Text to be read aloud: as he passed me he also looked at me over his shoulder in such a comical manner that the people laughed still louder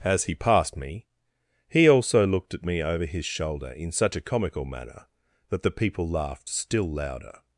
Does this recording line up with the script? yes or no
yes